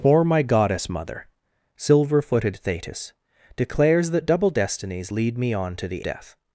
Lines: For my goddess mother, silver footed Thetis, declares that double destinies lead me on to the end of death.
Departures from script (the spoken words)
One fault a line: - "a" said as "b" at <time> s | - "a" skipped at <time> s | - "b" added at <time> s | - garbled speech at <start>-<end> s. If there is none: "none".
- "end of" skipped at 6.0 s